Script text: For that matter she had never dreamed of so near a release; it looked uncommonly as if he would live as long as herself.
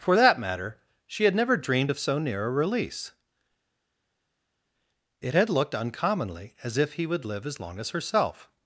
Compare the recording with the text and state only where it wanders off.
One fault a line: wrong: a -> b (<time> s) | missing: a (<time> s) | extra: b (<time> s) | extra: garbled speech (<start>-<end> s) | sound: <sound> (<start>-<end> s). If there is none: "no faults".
extra: had (5.3 s)